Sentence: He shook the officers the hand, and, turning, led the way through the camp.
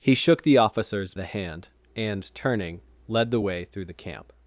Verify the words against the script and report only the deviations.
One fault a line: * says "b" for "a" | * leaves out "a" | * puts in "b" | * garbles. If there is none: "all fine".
all fine